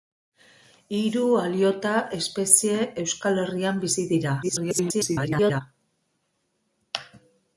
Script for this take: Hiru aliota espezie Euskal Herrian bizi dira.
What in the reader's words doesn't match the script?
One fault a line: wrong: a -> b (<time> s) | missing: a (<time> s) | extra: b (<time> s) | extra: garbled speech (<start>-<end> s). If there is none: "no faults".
extra: garbled speech (4.4-5.6 s)